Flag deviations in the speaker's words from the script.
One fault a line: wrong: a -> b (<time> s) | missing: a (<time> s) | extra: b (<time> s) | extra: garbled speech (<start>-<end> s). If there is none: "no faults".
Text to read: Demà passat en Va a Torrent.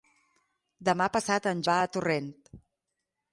no faults